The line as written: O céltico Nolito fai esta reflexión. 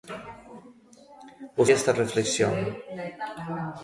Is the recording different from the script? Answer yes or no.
yes